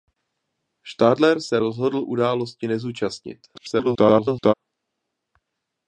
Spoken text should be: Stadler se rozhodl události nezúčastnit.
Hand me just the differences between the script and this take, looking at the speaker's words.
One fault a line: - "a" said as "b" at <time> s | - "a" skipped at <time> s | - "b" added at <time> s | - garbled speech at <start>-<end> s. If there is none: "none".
- garbled speech at 3.5-4.5 s